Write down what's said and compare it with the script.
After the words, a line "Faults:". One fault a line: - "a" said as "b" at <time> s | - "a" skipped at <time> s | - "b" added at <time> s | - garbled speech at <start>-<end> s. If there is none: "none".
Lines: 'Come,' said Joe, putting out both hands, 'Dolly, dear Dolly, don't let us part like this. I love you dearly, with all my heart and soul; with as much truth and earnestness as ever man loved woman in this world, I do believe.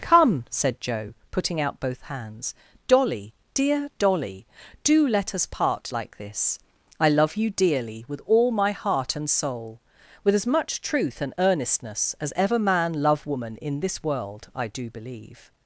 'Come,' said Joe, putting out both hands, 'Dolly, dear Dolly, do let us part like this. I love you dearly, with all my heart and soul; with as much truth and earnestness as ever man love woman in this world, I do believe.
Faults:
- "don't" said as "do" at 4.9 s
- "loved" said as "love" at 13.0 s